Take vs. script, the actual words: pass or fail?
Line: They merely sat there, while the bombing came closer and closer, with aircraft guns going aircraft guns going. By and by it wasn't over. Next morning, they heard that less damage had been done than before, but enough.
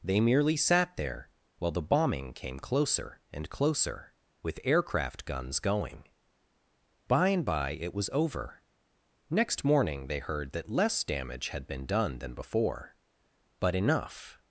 fail